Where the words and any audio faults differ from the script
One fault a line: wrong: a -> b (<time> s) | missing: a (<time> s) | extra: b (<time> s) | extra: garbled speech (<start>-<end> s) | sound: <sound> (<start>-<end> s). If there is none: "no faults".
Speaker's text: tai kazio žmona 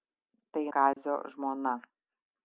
sound: dropout (0.9-1.0 s)